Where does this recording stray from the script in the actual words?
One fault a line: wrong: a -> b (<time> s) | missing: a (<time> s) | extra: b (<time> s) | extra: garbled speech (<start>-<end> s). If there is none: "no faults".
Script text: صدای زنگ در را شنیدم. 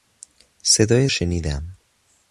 missing: زنگ در را (1.1 s)